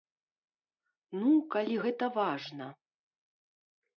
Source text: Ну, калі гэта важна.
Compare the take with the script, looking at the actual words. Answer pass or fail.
pass